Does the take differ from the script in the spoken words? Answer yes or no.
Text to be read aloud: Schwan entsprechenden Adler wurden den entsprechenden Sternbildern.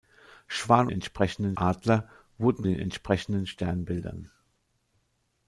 no